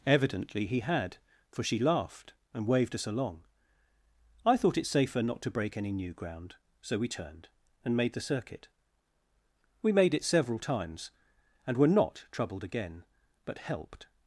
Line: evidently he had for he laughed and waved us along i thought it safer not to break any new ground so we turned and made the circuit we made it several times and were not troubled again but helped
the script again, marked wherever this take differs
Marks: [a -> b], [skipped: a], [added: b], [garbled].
evidently he had for [he -> she] laughed and waved us along i thought it safer not to break any new ground so we turned and made the circuit we made it several times and were not troubled again but helped